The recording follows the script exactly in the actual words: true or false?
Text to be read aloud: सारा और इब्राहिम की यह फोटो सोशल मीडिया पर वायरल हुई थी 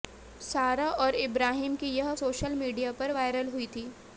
false